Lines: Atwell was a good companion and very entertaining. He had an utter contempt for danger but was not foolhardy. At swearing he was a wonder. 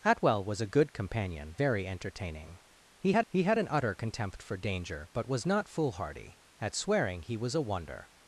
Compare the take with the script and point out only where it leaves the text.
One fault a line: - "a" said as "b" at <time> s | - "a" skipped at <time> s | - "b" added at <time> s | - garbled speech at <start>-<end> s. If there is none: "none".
- "and" skipped at 1.6 s
- "he had" added at 3.3 s